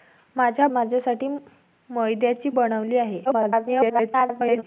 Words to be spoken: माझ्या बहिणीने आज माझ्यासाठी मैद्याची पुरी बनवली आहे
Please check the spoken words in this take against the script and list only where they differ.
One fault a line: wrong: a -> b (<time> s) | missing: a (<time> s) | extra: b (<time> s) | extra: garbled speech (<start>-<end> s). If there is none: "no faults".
missing: बहिणीने आज (0.7 s)
missing: पुरी (2.5 s)
extra: garbled speech (3.2-4.6 s)